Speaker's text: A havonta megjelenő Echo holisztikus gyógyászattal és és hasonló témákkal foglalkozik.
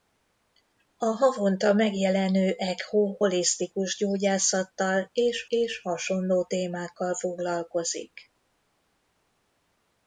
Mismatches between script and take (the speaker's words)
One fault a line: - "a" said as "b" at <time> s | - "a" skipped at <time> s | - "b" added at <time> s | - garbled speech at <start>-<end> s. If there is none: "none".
none